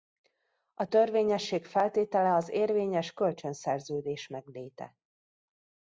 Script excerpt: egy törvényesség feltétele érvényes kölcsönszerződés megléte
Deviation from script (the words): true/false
true